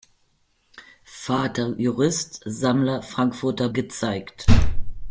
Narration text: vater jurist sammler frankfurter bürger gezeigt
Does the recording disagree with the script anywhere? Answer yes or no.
yes